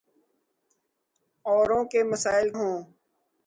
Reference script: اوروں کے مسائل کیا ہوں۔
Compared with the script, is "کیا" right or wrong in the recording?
wrong